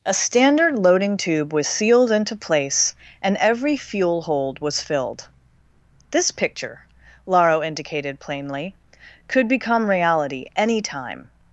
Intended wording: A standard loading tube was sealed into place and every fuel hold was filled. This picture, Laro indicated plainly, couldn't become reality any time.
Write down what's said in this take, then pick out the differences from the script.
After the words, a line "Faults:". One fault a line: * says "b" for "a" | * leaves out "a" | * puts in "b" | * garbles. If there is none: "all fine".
A standard loading tube was sealed into place and every fuel hold was filled. This picture, Laro indicated plainly, could become reality any time.
Faults:
* says "could" for "couldn't"